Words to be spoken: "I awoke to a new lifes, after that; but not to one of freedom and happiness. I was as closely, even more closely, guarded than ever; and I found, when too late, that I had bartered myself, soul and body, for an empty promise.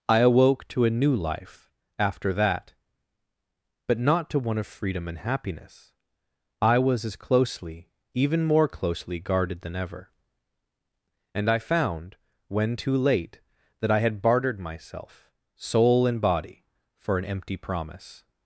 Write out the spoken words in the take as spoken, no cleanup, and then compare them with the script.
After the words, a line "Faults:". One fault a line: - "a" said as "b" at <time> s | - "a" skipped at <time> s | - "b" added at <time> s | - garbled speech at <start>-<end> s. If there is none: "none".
"I awoke to a new life, after that; but not to one of freedom and happiness. I was as closely, even more closely, guarded than ever; and I found, when too late, that I had bartered myself, soul and body, for an empty promise.
Faults:
- "lifes" said as "life" at 1.1 s